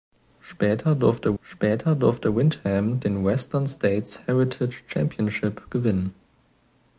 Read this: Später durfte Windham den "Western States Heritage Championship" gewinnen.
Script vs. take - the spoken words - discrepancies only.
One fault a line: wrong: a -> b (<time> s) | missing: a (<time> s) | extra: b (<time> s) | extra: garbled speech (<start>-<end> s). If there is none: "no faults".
extra: später durfte (1.4 s)